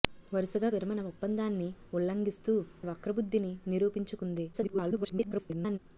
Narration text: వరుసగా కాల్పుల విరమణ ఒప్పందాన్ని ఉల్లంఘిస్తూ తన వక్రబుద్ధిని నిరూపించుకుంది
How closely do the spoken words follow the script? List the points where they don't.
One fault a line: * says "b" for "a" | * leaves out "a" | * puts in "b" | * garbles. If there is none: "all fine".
* leaves out "కాల్పుల"
* leaves out "తన"
* garbles